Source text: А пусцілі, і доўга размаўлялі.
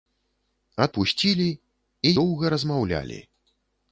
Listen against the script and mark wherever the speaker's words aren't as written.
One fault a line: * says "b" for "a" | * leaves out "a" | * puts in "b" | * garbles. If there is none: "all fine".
all fine